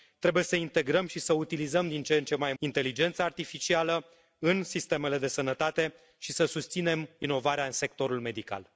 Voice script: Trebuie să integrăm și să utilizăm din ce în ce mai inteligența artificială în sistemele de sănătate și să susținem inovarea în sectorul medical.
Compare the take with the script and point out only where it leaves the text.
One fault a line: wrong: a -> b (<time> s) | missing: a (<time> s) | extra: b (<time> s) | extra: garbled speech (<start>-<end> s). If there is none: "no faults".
no faults